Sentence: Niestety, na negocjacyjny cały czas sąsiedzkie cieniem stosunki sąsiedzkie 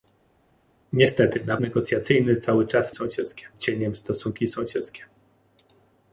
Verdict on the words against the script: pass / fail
pass